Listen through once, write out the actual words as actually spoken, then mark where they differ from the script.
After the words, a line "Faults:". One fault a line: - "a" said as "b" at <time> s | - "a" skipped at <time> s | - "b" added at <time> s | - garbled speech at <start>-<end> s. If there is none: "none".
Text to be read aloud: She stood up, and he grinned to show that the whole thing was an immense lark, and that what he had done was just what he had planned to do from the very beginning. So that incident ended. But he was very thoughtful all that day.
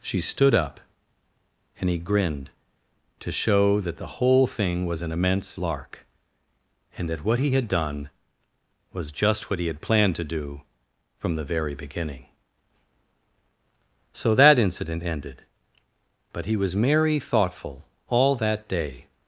She stood up, and he grinned to show that the whole thing was an immense lark, and that what he had done was just what he had planned to do from the very beginning. So that incident ended. But he was merry thoughtful all that day.
Faults:
- "very" said as "merry" at 16.7 s